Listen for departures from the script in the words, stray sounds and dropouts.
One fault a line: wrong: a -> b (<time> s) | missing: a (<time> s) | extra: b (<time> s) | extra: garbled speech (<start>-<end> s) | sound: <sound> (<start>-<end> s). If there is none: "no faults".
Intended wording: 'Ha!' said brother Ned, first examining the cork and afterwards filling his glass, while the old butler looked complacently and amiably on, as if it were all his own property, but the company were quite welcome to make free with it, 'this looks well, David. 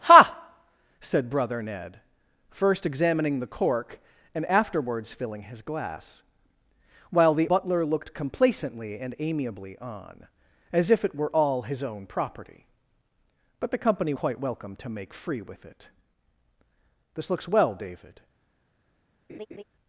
missing: old (7.5 s)
missing: were (14.1 s)
sound: laugh (19.3-19.6 s)